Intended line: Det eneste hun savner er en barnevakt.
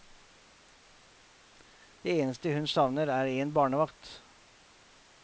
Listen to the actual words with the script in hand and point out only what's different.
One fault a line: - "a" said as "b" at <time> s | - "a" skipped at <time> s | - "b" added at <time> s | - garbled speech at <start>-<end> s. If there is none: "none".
none